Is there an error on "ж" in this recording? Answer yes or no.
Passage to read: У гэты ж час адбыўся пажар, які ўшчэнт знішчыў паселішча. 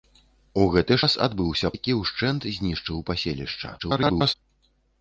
yes